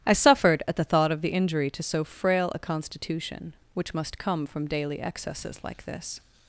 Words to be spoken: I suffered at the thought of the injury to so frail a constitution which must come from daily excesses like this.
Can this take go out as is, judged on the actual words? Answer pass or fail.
pass